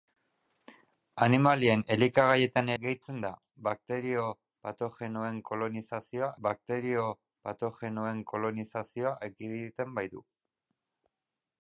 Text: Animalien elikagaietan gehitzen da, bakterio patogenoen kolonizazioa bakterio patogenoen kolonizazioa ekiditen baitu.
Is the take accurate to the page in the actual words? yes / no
yes